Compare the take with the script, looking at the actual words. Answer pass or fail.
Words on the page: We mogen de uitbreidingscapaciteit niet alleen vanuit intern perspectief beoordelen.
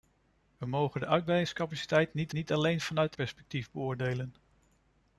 fail